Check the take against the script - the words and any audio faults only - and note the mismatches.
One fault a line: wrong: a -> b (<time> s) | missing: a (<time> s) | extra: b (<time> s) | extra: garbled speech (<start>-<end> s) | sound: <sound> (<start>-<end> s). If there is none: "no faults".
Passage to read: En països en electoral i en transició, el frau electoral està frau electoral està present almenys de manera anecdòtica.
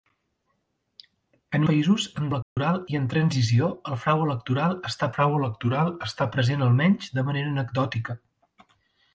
sound: dropout (2.4-2.6 s)